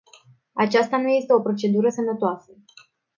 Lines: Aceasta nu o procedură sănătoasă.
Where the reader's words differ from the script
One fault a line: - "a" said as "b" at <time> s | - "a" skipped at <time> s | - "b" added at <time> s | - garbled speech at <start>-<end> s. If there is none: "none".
- "este" added at 1.1 s